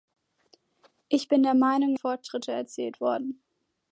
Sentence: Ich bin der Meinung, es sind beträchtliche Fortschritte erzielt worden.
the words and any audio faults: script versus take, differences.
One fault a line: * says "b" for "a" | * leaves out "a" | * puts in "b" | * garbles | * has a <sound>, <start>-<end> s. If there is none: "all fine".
* leaves out "es sind beträchtliche"